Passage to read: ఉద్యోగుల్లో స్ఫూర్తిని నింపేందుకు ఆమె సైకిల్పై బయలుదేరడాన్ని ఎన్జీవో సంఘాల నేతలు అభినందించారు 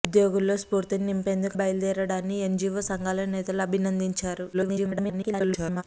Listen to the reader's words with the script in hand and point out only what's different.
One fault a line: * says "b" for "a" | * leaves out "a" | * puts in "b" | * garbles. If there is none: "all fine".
* leaves out "ఆమె సైకిల్పై"
* garbles